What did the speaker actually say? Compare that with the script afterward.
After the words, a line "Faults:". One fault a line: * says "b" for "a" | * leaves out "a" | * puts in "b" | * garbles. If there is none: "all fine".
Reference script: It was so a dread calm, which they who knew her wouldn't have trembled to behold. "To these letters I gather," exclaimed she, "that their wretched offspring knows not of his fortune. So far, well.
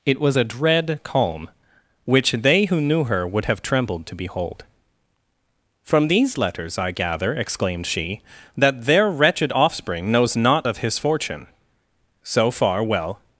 It was a dread calm, which they who knew her would have trembled to behold. "From these letters I gather," exclaimed she, "that their wretched offspring knows not of his fortune. So far, well.
Faults:
* leaves out "so"
* says "would" for "wouldn't"
* says "From" for "To"